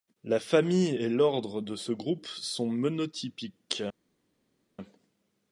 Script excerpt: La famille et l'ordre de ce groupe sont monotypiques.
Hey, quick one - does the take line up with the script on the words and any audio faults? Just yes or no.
yes